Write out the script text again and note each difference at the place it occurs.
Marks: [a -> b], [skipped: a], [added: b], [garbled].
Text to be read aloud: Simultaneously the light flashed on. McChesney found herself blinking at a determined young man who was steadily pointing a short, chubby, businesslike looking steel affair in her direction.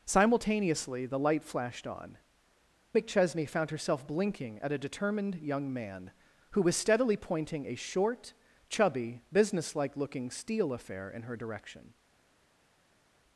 Simultaneously the light flashed on. McChesney found herself blinking at a determined young man who was steadily pointing a short, chubby, businesslike looking steel affair in her direction.